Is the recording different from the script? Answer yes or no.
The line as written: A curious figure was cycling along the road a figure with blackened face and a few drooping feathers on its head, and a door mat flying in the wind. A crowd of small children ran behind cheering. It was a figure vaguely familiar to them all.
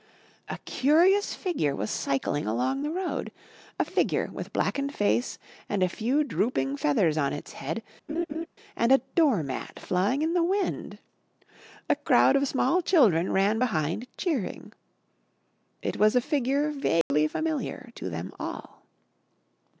no